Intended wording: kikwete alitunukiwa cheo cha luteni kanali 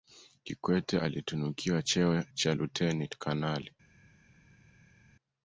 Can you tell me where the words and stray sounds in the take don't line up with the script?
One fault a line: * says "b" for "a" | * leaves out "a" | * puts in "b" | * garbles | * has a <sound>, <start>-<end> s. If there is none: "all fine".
all fine